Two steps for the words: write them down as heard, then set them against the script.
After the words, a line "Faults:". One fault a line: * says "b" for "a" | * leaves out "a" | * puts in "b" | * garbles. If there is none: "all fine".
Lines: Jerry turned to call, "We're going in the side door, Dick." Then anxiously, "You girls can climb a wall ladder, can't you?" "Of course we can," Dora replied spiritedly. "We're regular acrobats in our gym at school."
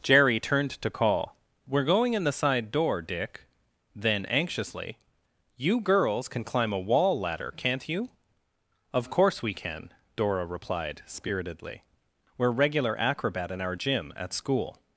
Jerry turned to call, "We're going in the side door, Dick." Then anxiously, "You girls can climb a wall ladder, can't you?" "Of course we can," Dora replied spiritedly. "We're regular acrobat in our gym at school."
Faults:
* says "acrobat" for "acrobats"